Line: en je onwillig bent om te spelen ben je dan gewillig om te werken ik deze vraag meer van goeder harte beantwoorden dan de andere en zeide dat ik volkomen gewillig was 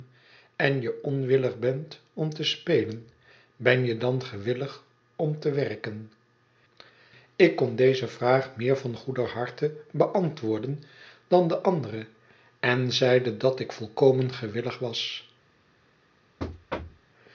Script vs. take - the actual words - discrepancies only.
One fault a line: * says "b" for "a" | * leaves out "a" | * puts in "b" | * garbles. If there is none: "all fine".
* puts in "kon"